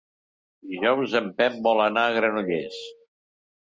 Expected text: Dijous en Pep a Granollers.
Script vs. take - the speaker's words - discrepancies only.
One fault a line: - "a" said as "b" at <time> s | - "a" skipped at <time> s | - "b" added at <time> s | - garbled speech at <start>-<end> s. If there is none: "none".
- "vol anar" added at 1.7 s